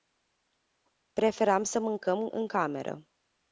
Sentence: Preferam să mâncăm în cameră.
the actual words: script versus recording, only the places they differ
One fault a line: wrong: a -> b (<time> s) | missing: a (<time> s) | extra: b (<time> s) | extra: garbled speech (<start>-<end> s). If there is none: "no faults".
no faults